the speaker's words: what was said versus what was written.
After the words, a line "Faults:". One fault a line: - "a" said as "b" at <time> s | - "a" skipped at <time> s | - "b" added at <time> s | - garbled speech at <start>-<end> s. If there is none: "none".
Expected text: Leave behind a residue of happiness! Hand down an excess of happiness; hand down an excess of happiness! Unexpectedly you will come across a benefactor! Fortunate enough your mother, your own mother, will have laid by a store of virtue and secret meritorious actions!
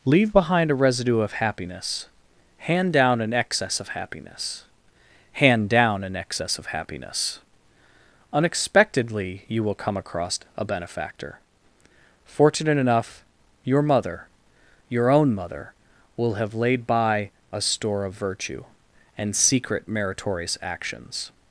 Leave behind a residue of happiness! Hand down an excess of happiness; hand down an excess of happiness! Unexpectedly you will come across a benefactor! Fortunate enough your mother, your own mother, will have laid by a store of virtue and secret meritorious actions!
Faults:
none